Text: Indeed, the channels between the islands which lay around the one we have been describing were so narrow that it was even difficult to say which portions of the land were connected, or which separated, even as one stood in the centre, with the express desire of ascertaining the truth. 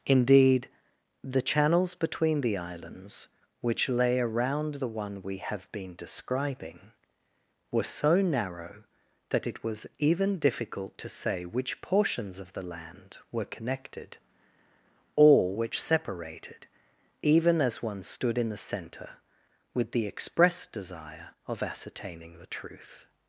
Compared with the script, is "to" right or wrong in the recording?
right